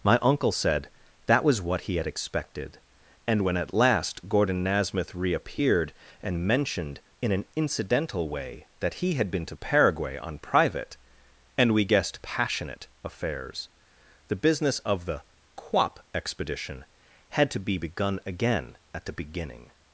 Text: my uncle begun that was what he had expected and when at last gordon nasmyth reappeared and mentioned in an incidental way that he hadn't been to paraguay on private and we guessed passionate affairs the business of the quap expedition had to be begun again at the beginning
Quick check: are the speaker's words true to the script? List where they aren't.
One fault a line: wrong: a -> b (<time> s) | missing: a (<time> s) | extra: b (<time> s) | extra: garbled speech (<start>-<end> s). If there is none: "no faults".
wrong: begun -> said (0.5 s)
wrong: hadn't -> had (9.1 s)